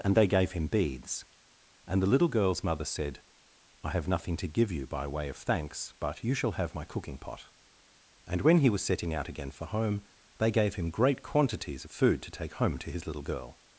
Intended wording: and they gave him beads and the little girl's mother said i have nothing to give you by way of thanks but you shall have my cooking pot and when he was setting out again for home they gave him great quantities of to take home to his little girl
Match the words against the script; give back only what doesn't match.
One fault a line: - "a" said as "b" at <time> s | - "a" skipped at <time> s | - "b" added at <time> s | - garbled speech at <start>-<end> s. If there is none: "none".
- "food" added at 11.9 s